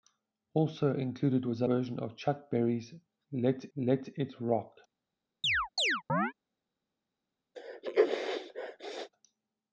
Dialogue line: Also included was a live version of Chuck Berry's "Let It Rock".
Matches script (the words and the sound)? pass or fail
fail